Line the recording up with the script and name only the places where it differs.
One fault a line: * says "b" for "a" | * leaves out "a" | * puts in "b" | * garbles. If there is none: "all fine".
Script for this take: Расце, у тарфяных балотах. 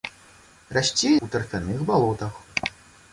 all fine